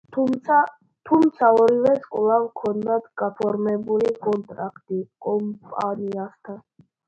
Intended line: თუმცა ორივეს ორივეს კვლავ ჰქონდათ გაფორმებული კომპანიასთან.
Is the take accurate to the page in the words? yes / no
no